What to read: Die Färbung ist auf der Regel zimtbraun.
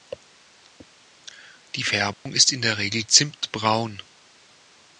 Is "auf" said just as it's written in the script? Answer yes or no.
no